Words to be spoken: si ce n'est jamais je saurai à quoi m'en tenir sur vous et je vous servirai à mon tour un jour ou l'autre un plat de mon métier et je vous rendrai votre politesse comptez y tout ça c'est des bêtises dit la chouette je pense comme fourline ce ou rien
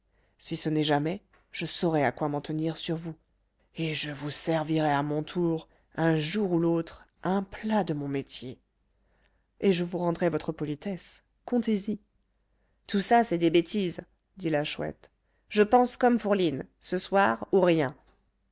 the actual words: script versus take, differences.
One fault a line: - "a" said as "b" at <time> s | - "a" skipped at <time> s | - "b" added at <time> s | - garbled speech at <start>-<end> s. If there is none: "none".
- "soir" added at 17.0 s